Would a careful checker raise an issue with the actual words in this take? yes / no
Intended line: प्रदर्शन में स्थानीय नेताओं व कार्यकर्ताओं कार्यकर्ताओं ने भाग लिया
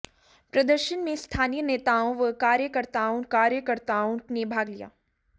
no